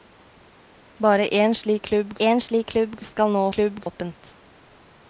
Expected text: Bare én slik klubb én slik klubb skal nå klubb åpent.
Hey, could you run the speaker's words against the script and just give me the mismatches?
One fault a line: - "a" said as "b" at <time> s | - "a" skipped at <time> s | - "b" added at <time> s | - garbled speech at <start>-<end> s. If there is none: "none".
none